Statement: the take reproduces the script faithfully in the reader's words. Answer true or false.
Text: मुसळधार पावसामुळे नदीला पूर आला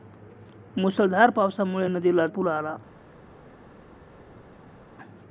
true